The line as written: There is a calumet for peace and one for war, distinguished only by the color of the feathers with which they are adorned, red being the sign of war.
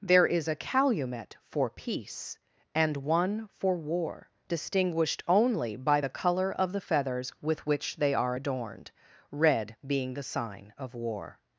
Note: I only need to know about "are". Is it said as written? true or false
true